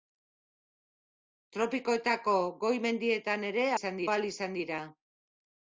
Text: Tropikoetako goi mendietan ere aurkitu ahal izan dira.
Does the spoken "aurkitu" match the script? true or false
false